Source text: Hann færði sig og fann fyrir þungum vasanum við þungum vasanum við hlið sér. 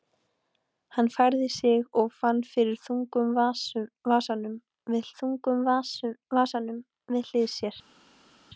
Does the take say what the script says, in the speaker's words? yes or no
yes